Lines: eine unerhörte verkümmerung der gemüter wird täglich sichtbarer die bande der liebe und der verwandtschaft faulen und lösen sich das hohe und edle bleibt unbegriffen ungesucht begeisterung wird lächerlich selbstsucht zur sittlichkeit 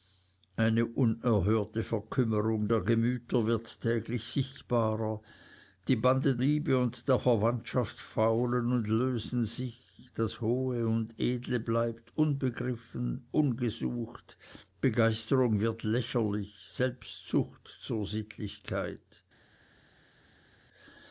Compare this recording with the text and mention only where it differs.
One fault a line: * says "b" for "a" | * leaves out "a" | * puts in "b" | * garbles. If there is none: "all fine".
* leaves out "der"